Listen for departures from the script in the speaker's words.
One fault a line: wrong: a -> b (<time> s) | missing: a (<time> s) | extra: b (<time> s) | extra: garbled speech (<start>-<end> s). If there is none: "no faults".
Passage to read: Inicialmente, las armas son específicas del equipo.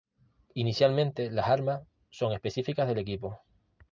no faults